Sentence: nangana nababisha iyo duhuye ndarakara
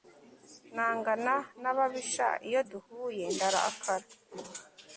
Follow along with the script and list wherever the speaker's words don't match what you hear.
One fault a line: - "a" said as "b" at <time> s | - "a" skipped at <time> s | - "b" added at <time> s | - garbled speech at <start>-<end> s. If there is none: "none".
none